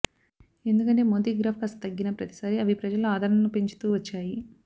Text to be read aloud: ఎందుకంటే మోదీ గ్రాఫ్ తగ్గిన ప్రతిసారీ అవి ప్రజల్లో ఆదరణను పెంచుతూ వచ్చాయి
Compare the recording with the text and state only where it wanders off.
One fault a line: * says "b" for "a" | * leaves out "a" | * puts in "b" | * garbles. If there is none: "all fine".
* puts in "కాస్త"